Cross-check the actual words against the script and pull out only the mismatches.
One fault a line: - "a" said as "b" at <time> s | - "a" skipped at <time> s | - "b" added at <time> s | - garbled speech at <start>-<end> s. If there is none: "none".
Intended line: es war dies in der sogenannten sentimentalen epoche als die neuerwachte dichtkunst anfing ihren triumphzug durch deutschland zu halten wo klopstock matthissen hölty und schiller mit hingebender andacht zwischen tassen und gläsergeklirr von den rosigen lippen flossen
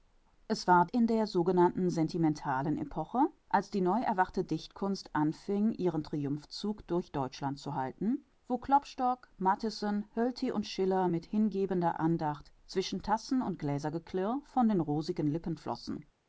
- "dies" skipped at 0.9 s